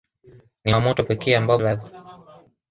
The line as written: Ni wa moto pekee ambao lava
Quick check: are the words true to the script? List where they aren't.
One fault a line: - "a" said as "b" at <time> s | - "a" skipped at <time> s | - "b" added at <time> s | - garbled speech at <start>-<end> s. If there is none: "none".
none